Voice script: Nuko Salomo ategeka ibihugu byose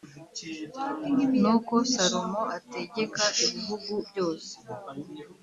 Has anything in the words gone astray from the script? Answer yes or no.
no